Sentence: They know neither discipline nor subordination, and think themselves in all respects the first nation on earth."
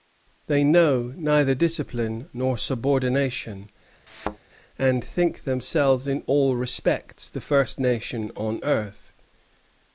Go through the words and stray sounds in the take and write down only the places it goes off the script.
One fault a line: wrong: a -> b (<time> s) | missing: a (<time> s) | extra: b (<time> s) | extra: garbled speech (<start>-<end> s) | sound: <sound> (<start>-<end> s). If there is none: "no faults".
sound: thud (4.1-4.4 s)